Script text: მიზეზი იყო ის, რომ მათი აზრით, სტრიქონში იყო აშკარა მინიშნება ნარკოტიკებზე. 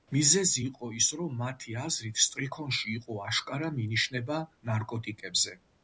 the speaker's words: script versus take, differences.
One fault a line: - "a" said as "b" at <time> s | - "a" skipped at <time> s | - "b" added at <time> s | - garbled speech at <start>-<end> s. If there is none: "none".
none